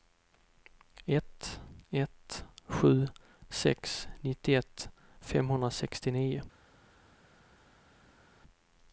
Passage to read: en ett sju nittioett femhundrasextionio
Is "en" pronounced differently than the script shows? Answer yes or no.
yes